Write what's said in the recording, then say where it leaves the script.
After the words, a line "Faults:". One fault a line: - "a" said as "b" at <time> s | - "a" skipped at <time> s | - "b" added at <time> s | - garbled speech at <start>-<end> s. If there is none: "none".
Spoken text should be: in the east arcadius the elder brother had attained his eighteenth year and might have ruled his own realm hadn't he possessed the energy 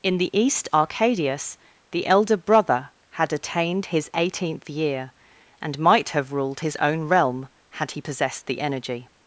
in the east arcadius the elder brother had attained his eighteenth year and might have ruled his own realm had he possessed the energy
Faults:
- "hadn't" said as "had" at 7.7 s